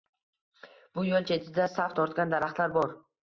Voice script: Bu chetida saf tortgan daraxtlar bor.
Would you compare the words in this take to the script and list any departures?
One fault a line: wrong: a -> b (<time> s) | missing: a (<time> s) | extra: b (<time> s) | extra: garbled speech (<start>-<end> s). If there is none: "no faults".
extra: yo'l (1.1 s)